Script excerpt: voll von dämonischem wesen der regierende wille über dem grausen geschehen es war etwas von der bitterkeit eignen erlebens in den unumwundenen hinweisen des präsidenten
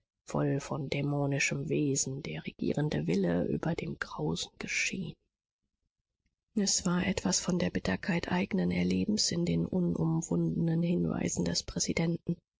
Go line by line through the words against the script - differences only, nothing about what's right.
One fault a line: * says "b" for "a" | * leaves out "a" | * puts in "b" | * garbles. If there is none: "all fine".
all fine